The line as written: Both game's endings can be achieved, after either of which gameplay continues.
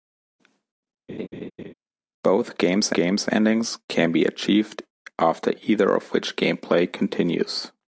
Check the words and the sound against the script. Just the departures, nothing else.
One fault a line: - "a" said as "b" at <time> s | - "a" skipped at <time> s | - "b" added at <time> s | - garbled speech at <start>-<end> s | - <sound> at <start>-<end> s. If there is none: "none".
- laugh at 1.1-1.7 s
- "game's" added at 2.9 s